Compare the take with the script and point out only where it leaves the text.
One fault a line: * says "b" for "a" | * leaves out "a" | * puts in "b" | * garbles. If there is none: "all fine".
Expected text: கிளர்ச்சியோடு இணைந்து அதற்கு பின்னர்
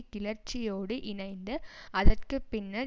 all fine